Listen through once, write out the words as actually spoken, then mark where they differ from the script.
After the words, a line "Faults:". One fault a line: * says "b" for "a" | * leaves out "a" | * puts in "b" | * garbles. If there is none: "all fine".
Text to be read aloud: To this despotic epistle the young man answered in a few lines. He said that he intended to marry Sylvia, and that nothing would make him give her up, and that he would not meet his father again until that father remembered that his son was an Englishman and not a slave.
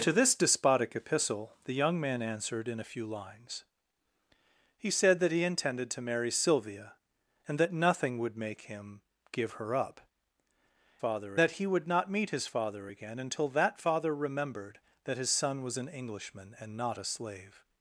To this despotic epistle the young man answered in a few lines. He said that he intended to marry Sylvia, and that nothing would make him give her up, father that he would not meet his father again until that father remembered that his son was an Englishman and not a slave.
Faults:
* says "father" for "and"